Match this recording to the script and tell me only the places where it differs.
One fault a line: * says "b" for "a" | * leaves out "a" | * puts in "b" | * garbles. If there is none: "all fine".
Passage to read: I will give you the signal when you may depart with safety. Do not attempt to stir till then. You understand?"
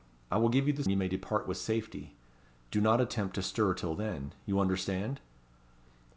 * leaves out "signal when"